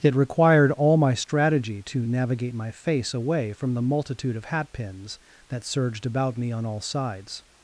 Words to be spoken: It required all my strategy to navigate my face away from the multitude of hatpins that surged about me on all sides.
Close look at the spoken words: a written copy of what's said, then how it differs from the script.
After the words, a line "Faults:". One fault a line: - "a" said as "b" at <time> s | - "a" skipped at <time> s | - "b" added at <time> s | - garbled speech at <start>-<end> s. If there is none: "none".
It required all my strategy to navigate my face away from the multitude of hatpins that surged about me on all sides.
Faults:
none